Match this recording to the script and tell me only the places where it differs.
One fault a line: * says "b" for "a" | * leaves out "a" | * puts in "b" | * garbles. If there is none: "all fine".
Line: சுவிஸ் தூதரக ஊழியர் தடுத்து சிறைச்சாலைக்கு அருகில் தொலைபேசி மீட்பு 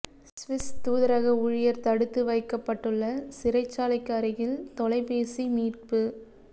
* puts in "வைக்கப்பட்டுள்ள"